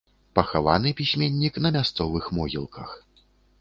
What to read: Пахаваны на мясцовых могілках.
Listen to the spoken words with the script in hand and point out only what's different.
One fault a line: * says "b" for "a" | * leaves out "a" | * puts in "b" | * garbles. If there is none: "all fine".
* puts in "пісьменнік"